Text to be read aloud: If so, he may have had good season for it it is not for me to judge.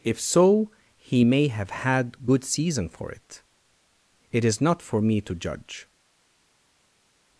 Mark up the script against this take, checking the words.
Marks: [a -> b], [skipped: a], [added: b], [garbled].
If so, he may have had good season for it it is not for me to judge.